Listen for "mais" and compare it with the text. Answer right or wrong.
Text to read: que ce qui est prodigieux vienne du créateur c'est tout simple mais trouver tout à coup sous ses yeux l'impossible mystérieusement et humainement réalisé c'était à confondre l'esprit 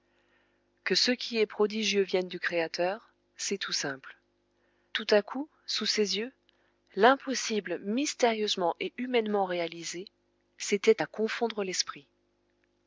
wrong